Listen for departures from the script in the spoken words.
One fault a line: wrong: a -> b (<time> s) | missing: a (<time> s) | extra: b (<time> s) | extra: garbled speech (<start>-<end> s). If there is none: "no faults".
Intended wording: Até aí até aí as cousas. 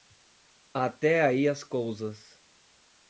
missing: até aí (1.5 s)